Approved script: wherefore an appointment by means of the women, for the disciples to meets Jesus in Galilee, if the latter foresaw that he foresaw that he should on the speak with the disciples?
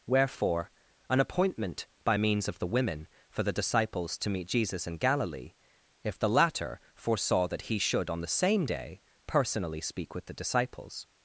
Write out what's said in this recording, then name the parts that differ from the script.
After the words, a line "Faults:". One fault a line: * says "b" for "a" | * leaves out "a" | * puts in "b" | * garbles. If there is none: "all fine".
wherefore an appointment by means of the women, for the disciples to meet Jesus in Galilee, if the latter foresaw that he should on the same day personally speak with the disciples?
Faults:
* says "meet" for "meets"
* says "should on the same day personally" for "foresaw that he should on the"